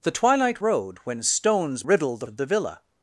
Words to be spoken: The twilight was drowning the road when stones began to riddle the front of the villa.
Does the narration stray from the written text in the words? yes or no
yes